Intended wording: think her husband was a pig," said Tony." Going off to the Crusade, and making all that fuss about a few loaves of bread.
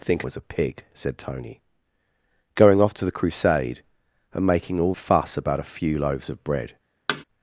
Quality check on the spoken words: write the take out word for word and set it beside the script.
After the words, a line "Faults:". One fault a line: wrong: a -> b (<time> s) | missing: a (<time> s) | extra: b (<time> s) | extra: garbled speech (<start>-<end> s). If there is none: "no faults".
think was a pig," said Tony." Going off to the Crusade, and making all fuss about a few loaves of bread.
Faults:
missing: her husband (0.2 s)
missing: that (4.9 s)